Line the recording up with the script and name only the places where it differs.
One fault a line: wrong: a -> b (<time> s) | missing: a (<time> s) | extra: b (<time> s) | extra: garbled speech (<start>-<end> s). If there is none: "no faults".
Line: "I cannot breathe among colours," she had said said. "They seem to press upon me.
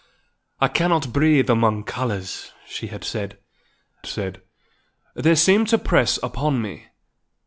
no faults